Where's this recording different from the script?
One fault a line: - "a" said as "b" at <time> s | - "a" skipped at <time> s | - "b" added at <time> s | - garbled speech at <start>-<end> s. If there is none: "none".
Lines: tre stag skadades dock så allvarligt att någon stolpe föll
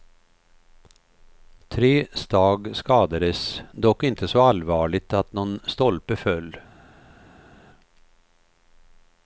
- "inte" added at 4.0 s